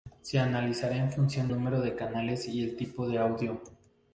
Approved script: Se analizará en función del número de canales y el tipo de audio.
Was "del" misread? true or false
true